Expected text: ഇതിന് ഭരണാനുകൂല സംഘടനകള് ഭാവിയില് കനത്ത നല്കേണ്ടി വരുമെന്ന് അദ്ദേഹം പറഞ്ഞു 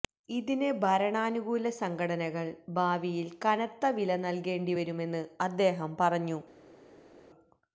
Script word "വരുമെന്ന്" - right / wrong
right